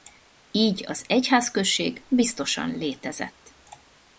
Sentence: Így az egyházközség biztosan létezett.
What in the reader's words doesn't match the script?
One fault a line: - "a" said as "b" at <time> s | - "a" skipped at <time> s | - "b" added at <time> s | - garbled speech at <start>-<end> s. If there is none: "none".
none